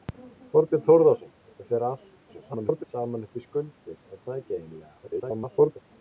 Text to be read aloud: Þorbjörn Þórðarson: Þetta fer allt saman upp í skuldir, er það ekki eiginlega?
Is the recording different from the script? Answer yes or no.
yes